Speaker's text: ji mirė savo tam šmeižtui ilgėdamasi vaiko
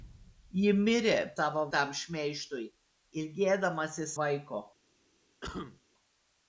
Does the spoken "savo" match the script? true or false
true